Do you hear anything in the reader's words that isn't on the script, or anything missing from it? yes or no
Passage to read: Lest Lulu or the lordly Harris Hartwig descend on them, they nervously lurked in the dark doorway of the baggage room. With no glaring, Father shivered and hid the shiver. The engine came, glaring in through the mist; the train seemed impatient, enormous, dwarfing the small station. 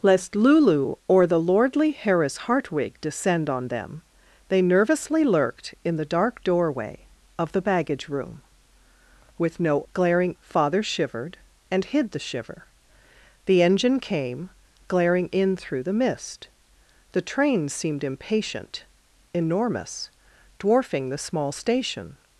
no